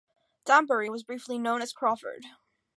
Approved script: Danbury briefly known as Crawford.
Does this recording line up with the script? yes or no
no